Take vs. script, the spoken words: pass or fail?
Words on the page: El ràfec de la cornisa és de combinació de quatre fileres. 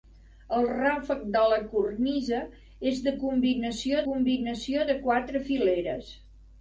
fail